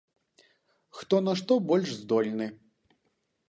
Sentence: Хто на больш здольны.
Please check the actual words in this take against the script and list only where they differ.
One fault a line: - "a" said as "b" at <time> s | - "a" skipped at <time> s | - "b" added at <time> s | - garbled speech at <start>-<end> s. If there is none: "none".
- "што" added at 1.4 s